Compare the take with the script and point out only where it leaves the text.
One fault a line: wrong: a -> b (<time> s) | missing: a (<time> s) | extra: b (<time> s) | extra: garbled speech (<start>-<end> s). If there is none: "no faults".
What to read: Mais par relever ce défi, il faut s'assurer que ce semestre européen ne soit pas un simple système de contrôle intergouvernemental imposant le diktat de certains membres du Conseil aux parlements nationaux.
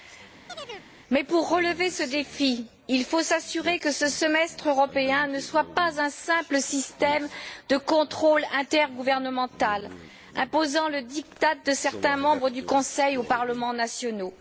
wrong: par -> pour (1.2 s)